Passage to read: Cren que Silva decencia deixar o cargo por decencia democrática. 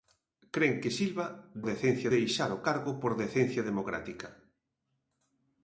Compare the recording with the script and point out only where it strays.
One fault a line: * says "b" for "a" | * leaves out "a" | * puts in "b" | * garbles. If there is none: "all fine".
all fine